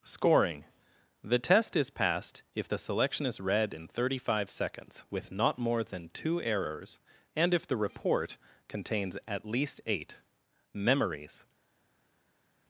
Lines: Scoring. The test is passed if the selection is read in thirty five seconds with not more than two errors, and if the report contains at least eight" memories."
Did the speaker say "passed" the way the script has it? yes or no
yes